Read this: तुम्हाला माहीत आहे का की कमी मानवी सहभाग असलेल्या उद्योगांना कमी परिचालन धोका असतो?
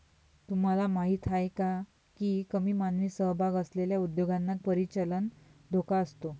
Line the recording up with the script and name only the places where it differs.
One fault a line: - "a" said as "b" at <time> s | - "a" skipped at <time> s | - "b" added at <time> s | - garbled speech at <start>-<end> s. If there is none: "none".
- "कमी" skipped at 4.5 s